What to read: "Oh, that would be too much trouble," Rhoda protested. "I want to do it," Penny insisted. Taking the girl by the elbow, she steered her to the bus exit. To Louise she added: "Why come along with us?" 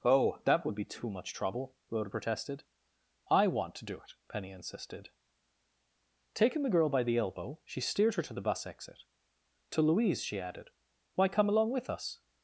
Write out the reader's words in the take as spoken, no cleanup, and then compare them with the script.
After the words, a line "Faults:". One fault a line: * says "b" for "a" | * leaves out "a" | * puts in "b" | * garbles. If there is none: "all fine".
"Oh, that would be too much trouble," Rhoda protested. "I want to do it," Penny insisted. Taking the girl by the elbow, she steered her to the bus exit. To Louise she added: "Why come along with us?"
Faults:
all fine